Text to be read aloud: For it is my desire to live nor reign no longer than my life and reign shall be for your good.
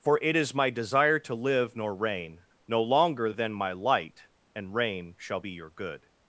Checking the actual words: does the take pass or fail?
fail